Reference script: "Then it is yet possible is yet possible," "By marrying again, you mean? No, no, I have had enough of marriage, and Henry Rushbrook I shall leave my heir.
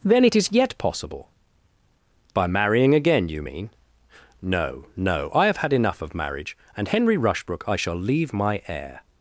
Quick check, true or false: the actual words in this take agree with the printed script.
false